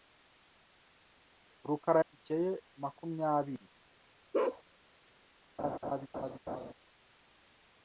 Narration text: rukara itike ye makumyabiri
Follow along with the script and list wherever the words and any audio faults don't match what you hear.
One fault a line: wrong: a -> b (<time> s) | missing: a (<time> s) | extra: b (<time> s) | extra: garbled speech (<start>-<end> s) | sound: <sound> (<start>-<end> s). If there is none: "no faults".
sound: bark (4.3-4.6 s)
sound: laugh (5.6-6.7 s)